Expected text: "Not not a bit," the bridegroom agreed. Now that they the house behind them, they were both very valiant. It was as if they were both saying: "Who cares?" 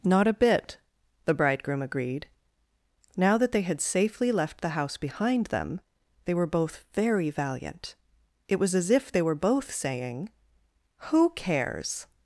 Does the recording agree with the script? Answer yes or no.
no